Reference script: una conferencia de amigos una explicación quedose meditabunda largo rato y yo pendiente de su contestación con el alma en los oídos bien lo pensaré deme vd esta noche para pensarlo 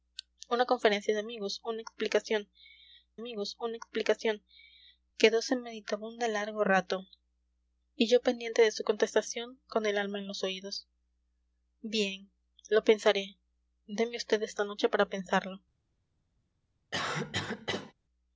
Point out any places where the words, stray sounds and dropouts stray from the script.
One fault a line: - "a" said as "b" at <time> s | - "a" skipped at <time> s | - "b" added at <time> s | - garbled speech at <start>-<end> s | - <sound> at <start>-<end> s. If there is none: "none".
- "amigos una explicación" added at 3.2 s
- cough at 16.9-17.9 s